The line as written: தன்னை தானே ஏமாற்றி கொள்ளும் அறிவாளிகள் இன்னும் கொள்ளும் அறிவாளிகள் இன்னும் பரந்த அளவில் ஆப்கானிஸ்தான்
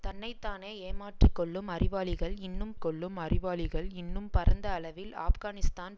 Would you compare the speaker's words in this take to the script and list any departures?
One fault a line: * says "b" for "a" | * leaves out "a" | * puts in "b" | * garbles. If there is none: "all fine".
all fine